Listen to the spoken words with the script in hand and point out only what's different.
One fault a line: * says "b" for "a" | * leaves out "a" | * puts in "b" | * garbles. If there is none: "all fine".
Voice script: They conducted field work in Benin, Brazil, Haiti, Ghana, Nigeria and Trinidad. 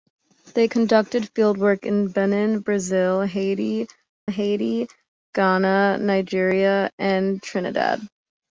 * puts in "Haiti"